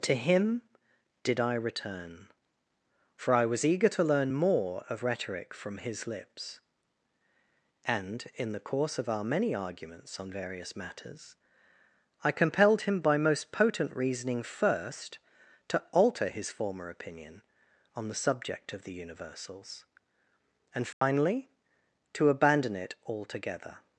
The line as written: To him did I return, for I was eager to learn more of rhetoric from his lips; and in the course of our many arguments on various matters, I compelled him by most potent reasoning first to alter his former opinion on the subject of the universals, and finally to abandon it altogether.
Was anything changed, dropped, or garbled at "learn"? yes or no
no